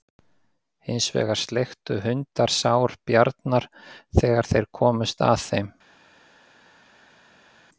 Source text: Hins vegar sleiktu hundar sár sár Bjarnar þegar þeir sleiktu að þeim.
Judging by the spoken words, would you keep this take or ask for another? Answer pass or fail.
fail